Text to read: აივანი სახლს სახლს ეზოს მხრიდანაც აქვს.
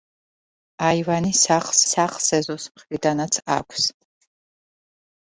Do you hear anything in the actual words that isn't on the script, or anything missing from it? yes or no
no